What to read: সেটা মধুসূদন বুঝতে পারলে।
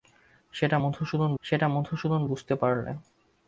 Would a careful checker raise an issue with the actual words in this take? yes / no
yes